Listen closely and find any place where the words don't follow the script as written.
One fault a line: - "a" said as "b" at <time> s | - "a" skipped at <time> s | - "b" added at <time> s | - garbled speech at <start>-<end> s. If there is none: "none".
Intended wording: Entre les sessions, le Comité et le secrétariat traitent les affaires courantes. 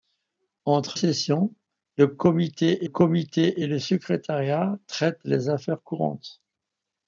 - "les" skipped at 1.0 s
- "Comité" added at 2.8 s